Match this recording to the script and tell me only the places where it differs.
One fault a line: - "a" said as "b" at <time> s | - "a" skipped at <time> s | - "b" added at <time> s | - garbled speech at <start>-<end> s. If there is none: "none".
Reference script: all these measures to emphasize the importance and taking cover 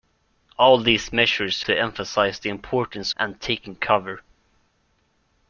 none